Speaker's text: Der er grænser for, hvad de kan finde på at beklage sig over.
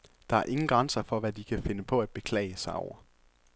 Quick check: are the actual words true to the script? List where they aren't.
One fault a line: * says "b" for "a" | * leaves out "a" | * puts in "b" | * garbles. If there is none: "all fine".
* puts in "ingen"